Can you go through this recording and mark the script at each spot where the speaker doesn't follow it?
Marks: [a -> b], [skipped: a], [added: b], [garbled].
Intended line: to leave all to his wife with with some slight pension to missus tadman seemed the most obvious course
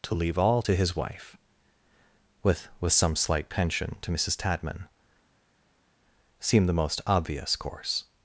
to leave all to his wife with with some slight pension to missus tadman seemed the most obvious course